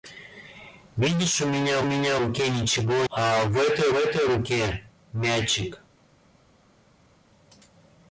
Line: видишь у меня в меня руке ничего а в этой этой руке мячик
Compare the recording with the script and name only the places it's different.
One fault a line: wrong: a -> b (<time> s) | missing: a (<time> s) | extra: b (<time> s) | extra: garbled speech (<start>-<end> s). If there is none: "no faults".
no faults